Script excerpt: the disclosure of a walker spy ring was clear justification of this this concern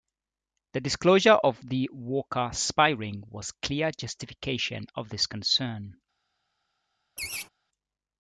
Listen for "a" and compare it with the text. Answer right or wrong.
wrong